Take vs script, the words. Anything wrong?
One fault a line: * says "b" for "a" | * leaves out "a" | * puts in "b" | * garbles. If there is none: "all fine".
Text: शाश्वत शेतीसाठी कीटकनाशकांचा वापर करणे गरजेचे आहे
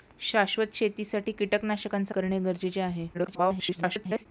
* leaves out "वापर"
* garbles